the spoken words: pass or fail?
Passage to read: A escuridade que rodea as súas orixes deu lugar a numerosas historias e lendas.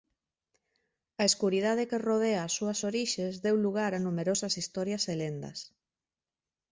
pass